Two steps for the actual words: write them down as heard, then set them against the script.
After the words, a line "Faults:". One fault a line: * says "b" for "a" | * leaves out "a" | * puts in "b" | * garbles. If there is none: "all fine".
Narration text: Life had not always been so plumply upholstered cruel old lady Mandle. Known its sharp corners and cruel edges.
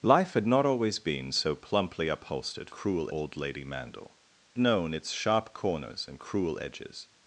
Life had not always been so plumply upholstered cruel old lady Mandle. Known its sharp corners and cruel edges.
Faults:
all fine